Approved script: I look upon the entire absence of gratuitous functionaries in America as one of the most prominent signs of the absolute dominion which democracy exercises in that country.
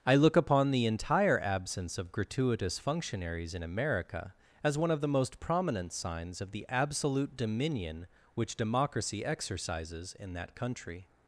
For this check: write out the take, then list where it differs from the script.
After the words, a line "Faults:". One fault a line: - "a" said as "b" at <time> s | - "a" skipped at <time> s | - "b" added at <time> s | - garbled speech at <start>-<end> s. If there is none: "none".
I look upon the entire absence of gratuitous functionaries in America as one of the most prominent signs of the absolute dominion which democracy exercises in that country.
Faults:
none